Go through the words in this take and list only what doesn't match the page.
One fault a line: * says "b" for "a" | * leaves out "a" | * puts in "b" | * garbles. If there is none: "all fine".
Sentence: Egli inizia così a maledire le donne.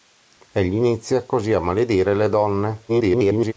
* garbles